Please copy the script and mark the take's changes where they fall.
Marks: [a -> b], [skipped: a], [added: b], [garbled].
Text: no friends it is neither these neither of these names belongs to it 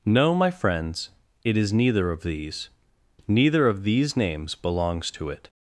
no [added: my] friends it is neither [added: of] these neither of these names belongs to it